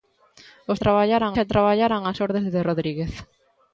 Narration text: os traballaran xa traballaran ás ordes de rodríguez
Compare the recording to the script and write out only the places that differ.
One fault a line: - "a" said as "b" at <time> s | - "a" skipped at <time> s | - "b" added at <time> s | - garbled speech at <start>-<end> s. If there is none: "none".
none